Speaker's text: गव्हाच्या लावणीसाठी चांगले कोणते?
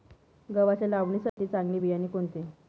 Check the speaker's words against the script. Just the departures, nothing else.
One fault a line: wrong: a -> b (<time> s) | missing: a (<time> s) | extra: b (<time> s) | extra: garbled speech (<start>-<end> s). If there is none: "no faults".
extra: बियाणे (1.8 s)